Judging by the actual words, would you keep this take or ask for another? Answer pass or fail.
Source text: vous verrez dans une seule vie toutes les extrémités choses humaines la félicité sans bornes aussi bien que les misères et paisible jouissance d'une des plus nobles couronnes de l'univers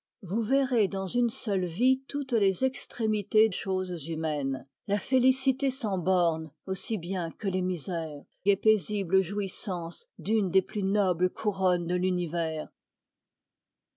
pass